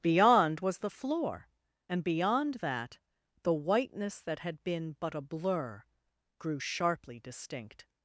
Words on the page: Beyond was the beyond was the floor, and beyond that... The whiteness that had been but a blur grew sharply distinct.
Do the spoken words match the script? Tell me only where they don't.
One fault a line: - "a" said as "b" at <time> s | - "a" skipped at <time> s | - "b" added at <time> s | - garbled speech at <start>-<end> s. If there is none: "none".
- "beyond was the" skipped at 0.9 s